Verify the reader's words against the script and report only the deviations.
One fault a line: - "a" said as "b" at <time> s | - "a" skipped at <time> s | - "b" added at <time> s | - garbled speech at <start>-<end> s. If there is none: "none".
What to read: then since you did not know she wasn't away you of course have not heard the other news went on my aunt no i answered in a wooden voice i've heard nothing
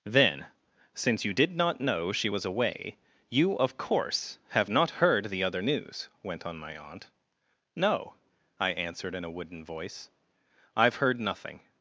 - "wasn't" said as "was" at 2.3 s